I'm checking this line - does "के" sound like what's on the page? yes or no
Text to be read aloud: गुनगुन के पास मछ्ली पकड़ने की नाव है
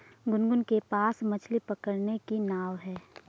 yes